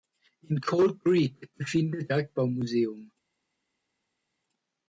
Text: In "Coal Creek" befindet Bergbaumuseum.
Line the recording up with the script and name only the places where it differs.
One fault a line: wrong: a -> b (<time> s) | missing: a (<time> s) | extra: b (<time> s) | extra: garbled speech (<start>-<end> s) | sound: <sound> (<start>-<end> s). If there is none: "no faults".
no faults